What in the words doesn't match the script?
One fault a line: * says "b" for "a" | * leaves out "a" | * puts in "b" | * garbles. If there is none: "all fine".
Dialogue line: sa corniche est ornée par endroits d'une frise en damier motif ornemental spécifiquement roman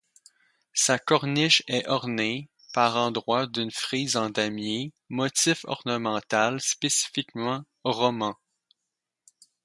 all fine